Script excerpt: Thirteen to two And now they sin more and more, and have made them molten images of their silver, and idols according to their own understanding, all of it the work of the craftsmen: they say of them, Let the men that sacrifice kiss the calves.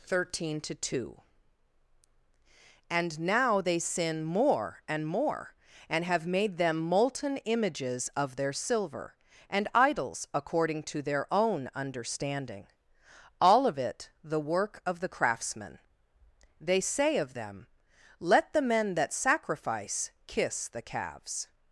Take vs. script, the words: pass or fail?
pass